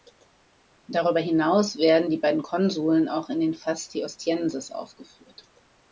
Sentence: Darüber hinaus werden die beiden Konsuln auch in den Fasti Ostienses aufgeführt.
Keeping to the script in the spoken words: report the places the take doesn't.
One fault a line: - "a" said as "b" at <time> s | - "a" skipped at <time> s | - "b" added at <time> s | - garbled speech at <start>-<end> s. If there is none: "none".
none